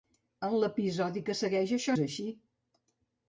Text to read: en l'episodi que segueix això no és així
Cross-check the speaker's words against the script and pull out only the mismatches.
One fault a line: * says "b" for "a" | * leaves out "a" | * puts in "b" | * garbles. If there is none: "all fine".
* leaves out "no"